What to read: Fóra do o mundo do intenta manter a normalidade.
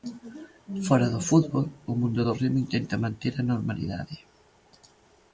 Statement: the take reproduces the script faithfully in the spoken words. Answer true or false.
false